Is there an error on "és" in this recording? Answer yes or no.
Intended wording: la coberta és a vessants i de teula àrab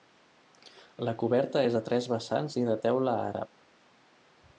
no